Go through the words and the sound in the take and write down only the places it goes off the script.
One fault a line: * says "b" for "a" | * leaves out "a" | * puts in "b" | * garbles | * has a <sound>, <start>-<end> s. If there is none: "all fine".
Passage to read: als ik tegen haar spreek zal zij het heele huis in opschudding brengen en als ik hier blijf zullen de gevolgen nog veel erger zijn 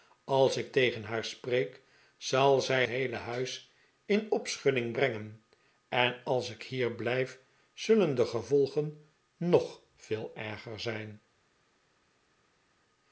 * leaves out "het"